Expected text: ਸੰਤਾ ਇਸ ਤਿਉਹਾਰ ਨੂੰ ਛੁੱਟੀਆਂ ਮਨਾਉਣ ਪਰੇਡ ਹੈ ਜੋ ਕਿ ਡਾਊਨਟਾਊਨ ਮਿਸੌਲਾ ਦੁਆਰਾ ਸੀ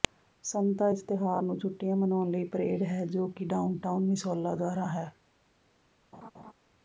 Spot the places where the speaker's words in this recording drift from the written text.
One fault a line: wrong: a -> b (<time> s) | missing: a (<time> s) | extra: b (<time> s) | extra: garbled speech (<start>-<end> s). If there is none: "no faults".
extra: ਲਈ (2.3 s)
wrong: ਸੀ -> ਹੈ (4.9 s)